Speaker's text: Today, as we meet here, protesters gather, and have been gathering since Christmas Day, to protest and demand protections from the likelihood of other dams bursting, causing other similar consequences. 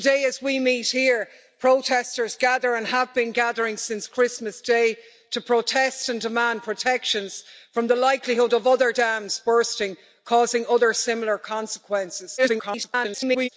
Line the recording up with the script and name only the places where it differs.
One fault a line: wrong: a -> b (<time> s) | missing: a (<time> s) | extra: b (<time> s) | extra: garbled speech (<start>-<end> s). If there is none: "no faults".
extra: garbled speech (12.4-13.5 s)